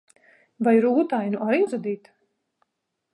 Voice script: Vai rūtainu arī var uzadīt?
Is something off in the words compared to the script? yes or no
yes